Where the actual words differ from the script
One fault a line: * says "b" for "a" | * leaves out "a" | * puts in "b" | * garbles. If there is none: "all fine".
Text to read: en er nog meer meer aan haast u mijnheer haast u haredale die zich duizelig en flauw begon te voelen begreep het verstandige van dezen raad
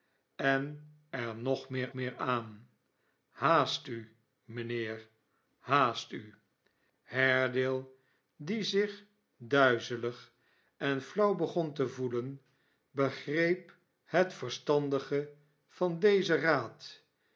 all fine